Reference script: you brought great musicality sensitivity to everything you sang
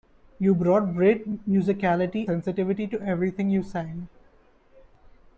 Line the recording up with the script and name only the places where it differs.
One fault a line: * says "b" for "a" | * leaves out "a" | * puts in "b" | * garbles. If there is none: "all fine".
all fine